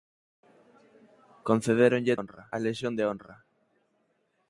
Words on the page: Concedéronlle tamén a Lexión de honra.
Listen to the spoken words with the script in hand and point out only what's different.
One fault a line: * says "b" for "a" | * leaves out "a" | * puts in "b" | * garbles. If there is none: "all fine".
* says "honra" for "tamén"